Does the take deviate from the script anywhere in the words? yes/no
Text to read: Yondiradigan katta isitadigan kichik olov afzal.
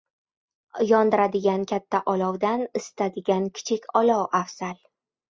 yes